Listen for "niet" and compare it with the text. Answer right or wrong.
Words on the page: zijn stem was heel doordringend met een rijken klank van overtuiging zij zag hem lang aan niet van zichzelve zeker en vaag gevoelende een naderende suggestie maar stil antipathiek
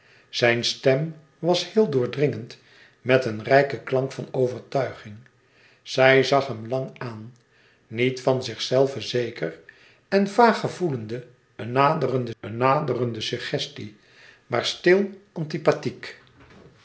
right